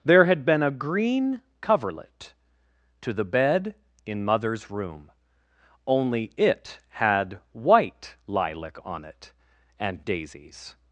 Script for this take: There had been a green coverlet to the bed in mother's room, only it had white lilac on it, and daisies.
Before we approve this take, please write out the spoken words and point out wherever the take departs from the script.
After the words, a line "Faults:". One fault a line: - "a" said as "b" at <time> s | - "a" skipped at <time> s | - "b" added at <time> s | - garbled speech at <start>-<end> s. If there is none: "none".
There had been a green coverlet to the bed in mother's room, only it had white lilac on it, and daisies.
Faults:
none